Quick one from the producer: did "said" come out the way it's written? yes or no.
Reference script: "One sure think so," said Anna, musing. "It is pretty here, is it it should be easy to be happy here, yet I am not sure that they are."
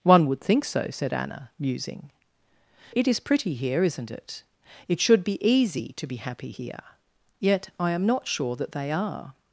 yes